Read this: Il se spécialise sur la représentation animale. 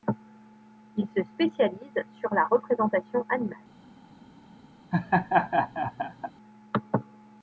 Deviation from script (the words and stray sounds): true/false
true